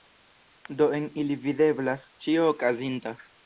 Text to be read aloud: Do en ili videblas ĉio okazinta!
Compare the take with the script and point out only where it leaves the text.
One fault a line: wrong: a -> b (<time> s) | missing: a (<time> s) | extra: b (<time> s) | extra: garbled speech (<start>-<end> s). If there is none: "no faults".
no faults